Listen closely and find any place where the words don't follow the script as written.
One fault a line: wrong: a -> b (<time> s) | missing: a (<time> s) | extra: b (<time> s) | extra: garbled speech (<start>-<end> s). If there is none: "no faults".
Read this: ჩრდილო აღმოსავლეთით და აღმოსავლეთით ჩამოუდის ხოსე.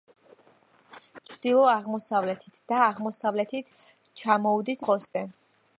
no faults